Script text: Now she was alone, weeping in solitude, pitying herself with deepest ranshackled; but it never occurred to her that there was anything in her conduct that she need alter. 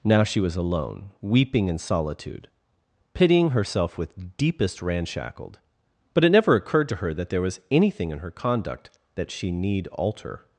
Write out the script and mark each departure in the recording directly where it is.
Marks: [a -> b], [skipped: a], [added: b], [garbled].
Now she was alone, weeping in solitude, pitying herself with deepest ranshackled; but it never occurred to her that there was anything in her conduct that she need alter.